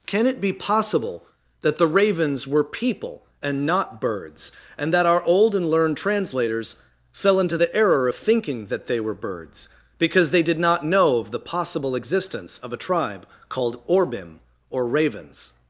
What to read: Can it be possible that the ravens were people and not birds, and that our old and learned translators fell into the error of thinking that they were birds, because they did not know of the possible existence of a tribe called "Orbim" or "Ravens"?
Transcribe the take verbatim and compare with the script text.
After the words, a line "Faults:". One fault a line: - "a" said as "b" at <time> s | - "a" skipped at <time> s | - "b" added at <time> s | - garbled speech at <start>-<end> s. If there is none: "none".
Can it be possible that the ravens were people and not birds, and that our old and learned translators fell into the error of thinking that they were birds, because they did not know of the possible existence of a tribe called "Orbim" or "Ravens"?
Faults:
none